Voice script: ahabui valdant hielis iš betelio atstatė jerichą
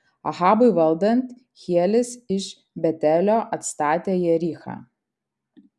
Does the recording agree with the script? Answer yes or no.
yes